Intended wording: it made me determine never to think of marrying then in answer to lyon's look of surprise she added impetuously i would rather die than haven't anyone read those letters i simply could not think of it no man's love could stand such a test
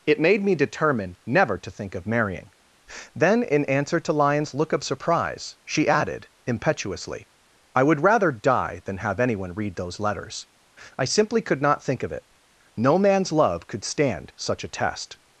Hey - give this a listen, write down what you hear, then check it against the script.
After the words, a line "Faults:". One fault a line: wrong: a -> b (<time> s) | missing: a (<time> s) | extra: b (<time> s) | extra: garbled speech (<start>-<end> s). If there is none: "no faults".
it made me determine never to think of marrying then in answer to lyon's look of surprise she added impetuously i would rather die than have anyone read those letters i simply could not think of it no man's love could stand such a test
Faults:
wrong: haven't -> have (9.0 s)